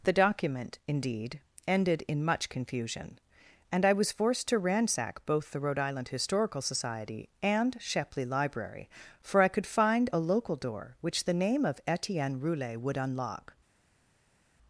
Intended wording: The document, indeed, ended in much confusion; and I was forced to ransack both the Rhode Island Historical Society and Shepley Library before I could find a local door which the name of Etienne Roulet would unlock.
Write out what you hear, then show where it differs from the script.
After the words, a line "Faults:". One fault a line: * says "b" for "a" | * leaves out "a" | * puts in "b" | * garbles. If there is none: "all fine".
The document, indeed, ended in much confusion; and I was forced to ransack both the Rhode Island Historical Society and Shepley Library for I could find a local door which the name of Etienne Roulet would unlock.
Faults:
* says "for" for "before"